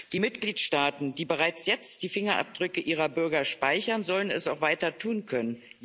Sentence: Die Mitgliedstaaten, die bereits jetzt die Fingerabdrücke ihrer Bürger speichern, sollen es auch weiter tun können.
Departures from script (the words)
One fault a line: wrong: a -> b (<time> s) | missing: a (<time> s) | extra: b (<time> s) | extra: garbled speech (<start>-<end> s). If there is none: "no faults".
no faults